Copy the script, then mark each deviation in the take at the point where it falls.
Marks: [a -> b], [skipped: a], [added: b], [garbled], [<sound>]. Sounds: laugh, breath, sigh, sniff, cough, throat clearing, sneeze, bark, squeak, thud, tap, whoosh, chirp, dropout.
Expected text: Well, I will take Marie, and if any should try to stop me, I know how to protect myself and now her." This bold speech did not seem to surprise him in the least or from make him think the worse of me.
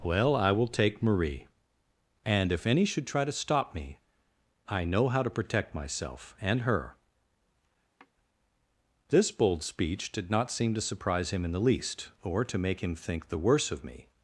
Well, I will take Marie, and if any should try to stop me, I know how to protect myself and [skipped: now] her." [sigh] This bold speech did not seem to surprise him in the least or [from -> to] make him think the worse of me.